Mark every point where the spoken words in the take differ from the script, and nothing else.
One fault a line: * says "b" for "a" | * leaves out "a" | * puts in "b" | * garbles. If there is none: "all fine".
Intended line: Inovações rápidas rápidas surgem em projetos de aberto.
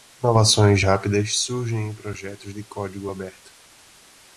* leaves out "rápidas"
* puts in "código"